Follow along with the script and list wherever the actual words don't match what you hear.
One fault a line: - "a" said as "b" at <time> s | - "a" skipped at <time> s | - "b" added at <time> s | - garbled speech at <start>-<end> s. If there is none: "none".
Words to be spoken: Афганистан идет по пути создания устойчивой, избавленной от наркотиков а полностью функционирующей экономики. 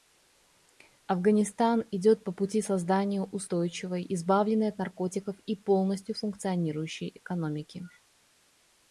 - "а" said as "и" at 5.4 s